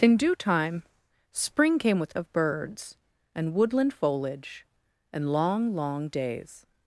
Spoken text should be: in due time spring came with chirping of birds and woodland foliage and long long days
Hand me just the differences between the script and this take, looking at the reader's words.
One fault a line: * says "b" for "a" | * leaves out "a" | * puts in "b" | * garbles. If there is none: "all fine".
* leaves out "chirping"